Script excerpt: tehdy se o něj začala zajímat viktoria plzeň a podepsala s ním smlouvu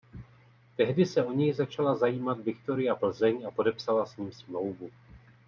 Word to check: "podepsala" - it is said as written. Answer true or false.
true